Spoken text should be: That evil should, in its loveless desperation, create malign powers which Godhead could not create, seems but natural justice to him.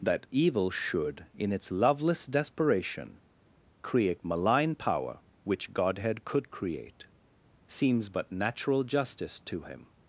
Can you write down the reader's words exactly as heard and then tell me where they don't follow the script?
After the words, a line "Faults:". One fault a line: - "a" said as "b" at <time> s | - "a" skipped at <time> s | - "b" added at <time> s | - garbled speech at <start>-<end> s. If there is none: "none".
That evil should, in its loveless desperation, create malign power which Godhead could create, seems but natural justice to him.
Faults:
- "powers" said as "power" at 4.8 s
- "not" skipped at 6.5 s